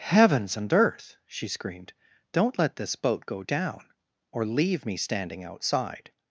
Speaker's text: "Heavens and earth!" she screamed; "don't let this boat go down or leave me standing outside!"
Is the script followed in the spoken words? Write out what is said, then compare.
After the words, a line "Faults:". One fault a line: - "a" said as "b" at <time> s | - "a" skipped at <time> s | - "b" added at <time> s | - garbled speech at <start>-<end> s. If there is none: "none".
"Heavens and earth!" she screamed; "don't let this boat go down or leave me standing outside!"
Faults:
none